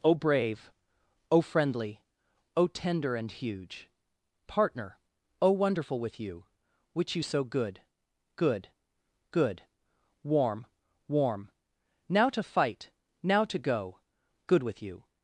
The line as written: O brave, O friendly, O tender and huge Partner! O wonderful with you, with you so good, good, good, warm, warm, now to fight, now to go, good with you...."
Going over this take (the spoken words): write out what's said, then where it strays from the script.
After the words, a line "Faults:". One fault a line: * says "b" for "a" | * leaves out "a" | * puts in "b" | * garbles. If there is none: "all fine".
O brave, O friendly, O tender and huge Partner! O wonderful with you, which you so good, good, good, warm, warm, now to fight, now to go, good with you...."
Faults:
* says "which" for "with"